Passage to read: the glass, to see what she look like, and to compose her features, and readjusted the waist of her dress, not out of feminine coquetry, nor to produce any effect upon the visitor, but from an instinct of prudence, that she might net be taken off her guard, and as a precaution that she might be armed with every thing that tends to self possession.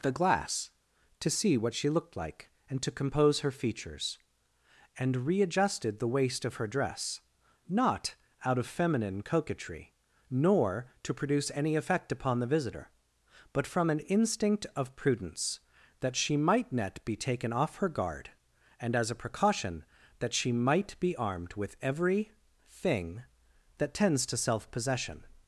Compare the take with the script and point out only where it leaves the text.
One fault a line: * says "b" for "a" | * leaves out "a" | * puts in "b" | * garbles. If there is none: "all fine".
* says "looked" for "look"